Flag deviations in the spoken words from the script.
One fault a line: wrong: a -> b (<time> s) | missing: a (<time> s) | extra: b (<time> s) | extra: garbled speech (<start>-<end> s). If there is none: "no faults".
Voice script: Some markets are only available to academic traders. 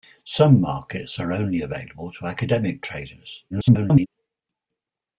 extra: garbled speech (3.5-4.1 s)